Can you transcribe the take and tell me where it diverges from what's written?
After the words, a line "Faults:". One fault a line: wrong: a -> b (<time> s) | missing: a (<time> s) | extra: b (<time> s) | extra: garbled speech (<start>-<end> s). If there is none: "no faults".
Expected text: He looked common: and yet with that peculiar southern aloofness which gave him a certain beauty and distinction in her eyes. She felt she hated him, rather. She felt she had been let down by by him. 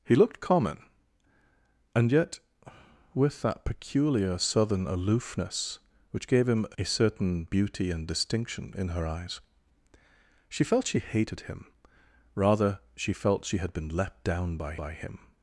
He looked common: and yet with that peculiar southern aloofness which gave him a certain beauty and distinction in her eyes. She felt she hated him, rather. She felt she had been let down by by him.
Faults:
no faults